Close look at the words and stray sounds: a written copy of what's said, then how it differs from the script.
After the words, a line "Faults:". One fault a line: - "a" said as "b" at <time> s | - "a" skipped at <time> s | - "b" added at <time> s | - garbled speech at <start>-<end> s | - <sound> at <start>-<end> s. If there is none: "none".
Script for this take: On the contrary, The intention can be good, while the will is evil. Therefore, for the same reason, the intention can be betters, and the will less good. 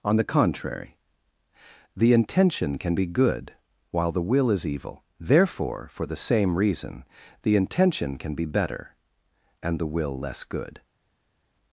On the contrary, The intention can be good, while the will is evil. Therefore, for the same reason, the intention can be better, and the will less good.
Faults:
- "betters" said as "better" at 8.4 s